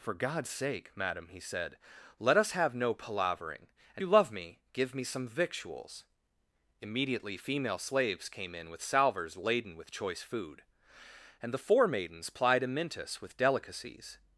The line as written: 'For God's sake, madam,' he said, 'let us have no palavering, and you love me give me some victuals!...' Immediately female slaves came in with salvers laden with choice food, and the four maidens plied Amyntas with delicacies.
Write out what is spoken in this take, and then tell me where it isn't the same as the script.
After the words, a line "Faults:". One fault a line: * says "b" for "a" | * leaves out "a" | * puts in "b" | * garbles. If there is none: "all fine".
'For God's sake, madam,' he said, 'let us have no palavering, and you love me give me some victuals!...' Immediately female slaves came in with salvers laden with choice food, and the four maidens plied Amyntas with delicacies.
Faults:
all fine